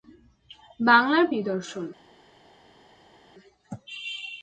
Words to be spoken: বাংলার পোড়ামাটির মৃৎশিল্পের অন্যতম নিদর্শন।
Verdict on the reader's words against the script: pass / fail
fail